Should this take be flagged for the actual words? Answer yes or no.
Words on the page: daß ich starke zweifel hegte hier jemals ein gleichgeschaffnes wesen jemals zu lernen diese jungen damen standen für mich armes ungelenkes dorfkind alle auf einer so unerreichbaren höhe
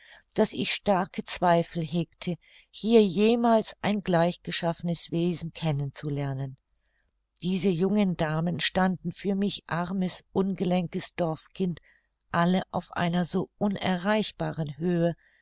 yes